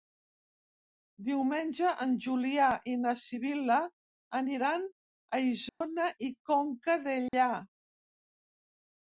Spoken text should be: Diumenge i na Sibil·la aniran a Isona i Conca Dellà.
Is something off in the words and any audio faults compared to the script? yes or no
yes